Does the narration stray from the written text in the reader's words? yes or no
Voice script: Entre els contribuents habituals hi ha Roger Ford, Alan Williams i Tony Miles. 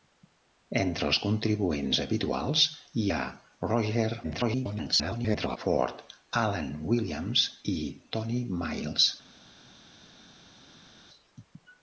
yes